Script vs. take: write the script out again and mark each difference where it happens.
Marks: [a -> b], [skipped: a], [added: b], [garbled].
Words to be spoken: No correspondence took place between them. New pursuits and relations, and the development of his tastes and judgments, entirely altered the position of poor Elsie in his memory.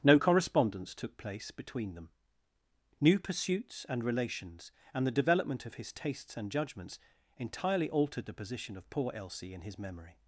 No correspondence took place between them. New pursuits and relations, and the development of his tastes and judgments, entirely altered the position of poor Elsie in his memory.